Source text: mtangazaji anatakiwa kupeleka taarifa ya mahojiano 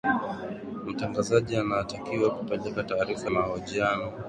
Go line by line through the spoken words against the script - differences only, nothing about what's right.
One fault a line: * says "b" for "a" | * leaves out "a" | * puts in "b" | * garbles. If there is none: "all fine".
* leaves out "ya"